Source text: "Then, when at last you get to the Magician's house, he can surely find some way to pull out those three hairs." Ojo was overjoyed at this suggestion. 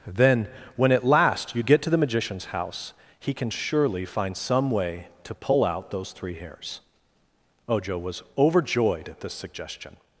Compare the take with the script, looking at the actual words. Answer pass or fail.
pass